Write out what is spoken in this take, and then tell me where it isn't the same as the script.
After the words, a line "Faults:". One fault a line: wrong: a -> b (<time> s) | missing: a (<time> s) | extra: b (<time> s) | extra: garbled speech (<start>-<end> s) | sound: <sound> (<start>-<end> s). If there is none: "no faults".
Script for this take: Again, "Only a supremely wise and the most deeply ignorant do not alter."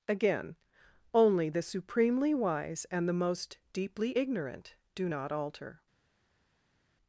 Again, "Only the supremely wise and the most deeply ignorant do not alter."
Faults:
wrong: a -> the (1.5 s)